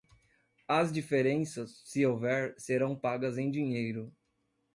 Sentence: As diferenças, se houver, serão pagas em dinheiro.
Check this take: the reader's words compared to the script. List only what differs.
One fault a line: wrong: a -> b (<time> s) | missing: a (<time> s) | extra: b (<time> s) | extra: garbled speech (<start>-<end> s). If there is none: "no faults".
no faults